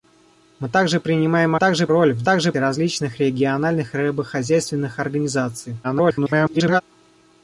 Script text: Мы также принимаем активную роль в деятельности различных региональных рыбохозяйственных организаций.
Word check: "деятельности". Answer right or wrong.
wrong